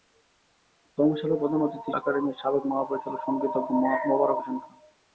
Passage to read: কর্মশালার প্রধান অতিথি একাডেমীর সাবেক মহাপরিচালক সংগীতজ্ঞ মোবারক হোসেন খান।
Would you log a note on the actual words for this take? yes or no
no